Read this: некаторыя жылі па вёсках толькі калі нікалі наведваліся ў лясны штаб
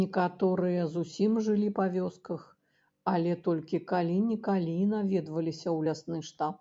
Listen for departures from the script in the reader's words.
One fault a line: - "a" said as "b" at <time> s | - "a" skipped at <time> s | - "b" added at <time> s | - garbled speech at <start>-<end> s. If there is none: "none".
- "зусім" added at 0.9 s
- "але" added at 3.1 s